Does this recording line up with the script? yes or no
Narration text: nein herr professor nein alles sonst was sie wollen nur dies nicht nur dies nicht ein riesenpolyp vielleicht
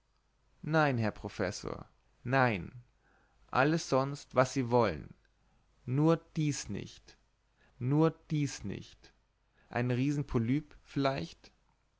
yes